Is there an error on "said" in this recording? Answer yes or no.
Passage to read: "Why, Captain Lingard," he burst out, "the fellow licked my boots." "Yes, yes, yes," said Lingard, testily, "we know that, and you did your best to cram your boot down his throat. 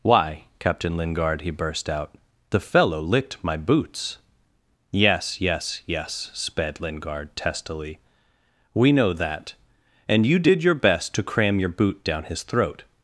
yes